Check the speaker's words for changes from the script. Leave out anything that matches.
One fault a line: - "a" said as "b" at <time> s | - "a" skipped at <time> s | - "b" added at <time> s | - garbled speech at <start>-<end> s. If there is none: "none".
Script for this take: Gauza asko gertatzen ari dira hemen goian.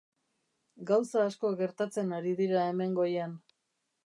none